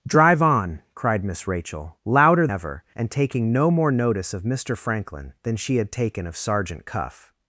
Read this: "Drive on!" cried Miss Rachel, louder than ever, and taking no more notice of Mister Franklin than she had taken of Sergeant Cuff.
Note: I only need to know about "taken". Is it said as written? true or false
true